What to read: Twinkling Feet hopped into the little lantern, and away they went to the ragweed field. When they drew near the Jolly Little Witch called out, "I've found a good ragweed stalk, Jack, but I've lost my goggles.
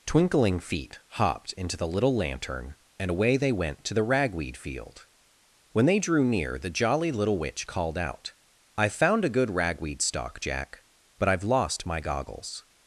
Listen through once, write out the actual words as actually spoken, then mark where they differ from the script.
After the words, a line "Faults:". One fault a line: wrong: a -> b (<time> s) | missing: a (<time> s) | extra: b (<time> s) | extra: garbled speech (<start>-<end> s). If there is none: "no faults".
Twinkling Feet hopped into the little lantern, and away they went to the ragweed field. When they drew near the Jolly Little Witch called out, "I've found a good ragweed stalk, Jack, but I've lost my goggles.
Faults:
no faults